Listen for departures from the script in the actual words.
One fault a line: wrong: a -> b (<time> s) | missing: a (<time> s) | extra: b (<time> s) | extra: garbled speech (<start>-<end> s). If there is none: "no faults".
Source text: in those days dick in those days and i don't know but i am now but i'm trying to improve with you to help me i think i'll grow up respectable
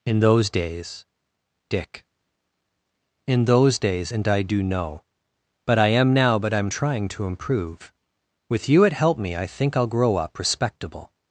wrong: don't -> do (4.4 s)
wrong: to -> at (8.9 s)